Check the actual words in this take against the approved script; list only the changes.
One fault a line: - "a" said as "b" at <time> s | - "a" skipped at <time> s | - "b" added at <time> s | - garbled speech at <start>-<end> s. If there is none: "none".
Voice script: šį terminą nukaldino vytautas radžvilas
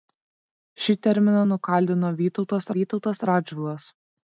- "vytautas" added at 2.8 s